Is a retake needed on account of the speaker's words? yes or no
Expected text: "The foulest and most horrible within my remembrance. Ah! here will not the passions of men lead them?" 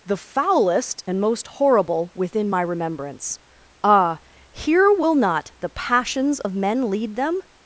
no